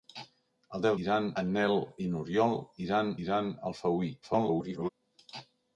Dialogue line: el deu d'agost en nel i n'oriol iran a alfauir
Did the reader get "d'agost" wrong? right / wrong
wrong